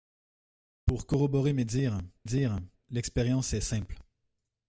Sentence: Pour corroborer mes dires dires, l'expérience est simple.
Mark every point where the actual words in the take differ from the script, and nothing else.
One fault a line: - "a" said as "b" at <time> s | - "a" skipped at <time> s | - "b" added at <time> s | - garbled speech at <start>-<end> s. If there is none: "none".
none